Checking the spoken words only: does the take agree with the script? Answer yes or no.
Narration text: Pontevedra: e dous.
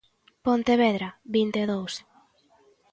no